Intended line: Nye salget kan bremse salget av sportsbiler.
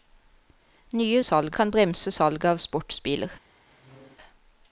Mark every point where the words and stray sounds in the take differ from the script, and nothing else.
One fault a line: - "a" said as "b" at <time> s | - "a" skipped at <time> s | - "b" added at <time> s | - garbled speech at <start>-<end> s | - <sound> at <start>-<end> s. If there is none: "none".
- squeak at 3.7-4.2 s